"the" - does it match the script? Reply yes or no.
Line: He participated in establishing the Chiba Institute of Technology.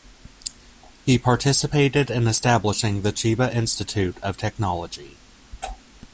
yes